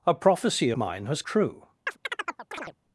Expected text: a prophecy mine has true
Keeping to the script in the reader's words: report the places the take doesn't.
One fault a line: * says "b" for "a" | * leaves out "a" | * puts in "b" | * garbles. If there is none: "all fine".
all fine